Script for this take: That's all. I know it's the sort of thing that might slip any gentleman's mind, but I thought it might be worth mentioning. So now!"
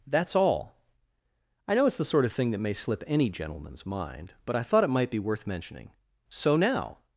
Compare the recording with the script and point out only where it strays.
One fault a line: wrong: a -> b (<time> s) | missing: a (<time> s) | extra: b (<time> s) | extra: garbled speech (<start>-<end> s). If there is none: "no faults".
wrong: might -> may (2.6 s)